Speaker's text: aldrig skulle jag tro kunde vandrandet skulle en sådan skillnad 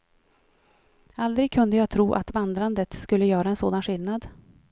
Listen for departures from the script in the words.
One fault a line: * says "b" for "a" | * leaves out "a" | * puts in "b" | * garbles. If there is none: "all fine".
* says "kunde" for "skulle"
* says "att" for "kunde"
* puts in "göra"